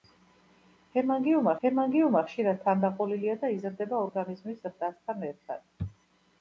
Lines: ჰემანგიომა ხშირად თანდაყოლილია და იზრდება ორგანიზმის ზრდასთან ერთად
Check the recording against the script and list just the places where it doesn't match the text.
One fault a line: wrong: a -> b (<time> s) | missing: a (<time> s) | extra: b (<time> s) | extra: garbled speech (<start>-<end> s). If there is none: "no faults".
extra: ჰემანგიომა (1.6 s)